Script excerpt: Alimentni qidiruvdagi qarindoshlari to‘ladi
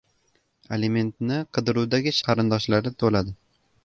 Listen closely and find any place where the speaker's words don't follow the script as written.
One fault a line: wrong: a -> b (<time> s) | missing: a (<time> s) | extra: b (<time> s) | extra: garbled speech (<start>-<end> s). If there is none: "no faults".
no faults